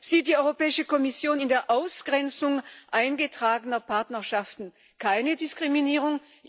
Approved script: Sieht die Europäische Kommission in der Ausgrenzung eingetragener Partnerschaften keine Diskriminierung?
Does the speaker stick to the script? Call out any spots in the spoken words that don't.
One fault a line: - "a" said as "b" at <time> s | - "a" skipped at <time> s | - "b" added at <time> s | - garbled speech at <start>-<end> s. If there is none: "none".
none